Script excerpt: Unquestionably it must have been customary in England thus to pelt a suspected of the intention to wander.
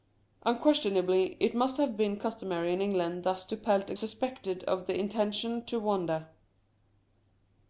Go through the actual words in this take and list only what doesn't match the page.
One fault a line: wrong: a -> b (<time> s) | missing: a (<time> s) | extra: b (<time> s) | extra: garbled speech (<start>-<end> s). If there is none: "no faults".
no faults